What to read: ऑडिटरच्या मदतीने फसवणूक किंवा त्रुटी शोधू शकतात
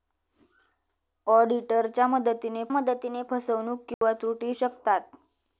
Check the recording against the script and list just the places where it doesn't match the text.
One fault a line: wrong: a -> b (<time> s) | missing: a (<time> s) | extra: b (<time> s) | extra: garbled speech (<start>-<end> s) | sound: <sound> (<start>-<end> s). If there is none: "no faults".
extra: मदतीने (2.7 s)
sound: dropout (3.9-4.0 s)
missing: शोधू (4.5 s)